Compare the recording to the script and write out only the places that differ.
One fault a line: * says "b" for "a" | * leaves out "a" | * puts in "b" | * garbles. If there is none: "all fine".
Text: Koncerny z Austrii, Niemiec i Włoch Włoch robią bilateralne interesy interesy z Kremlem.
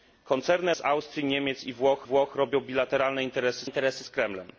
all fine